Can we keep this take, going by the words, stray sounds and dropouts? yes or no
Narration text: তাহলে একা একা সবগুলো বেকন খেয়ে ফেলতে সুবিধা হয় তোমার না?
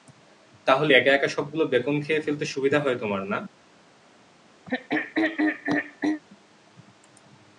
no